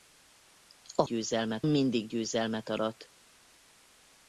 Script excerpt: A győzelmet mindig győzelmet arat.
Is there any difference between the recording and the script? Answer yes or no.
no